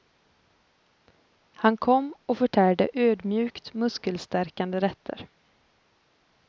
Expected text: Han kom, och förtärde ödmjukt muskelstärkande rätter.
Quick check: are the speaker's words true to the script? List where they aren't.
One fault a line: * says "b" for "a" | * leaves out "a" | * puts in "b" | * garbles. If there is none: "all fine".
all fine